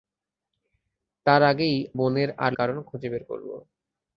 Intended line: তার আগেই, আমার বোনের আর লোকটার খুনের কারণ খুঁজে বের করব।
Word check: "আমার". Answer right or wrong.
wrong